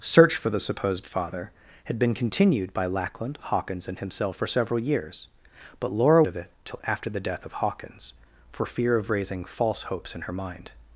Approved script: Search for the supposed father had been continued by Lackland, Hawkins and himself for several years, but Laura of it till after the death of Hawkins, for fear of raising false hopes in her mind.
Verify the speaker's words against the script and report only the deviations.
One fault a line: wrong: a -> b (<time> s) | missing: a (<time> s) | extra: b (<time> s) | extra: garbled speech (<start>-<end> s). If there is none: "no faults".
no faults